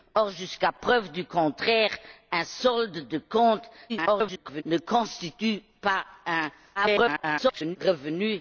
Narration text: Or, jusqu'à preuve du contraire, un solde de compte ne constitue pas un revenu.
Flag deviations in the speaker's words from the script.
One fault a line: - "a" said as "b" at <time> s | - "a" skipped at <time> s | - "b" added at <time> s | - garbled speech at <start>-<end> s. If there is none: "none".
- garbled speech at 3.9-4.6 s
- garbled speech at 6.7-7.8 s